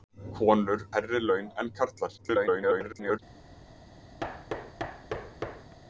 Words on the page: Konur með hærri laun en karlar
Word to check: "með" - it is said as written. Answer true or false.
false